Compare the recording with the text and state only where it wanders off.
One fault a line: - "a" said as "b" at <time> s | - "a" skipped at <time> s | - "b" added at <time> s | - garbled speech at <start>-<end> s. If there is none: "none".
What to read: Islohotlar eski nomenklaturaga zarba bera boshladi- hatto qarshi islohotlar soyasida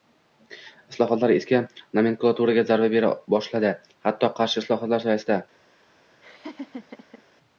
none